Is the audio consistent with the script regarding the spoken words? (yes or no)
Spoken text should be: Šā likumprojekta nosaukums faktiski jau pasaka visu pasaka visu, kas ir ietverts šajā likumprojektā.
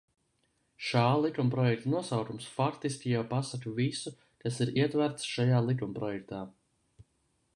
no